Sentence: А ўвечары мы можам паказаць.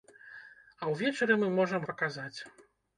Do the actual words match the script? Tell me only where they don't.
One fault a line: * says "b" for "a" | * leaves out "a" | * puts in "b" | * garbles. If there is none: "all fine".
all fine